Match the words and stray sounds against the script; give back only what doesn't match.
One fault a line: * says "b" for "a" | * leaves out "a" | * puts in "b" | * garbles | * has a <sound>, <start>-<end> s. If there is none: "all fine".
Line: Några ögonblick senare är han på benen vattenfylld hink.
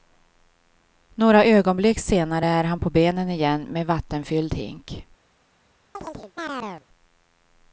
* puts in "igen med"
* has a chirp, 5.9-6.9 s